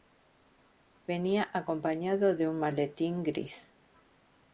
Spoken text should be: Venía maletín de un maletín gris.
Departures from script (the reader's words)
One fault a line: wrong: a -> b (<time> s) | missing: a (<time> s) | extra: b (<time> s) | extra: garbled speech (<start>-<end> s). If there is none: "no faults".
wrong: maletín -> acompañado (1.5 s)